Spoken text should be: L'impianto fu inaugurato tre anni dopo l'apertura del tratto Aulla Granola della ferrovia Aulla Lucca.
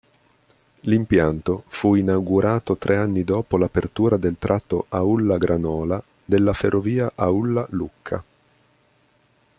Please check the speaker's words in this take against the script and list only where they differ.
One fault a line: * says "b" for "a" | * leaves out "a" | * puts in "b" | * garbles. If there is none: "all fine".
all fine